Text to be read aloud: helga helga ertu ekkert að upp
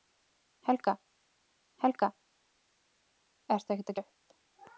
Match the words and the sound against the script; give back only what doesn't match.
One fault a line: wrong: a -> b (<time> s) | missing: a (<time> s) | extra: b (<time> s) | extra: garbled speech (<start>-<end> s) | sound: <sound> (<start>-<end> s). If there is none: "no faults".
no faults